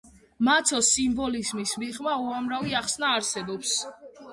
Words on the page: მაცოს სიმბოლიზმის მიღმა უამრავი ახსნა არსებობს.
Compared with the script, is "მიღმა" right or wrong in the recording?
right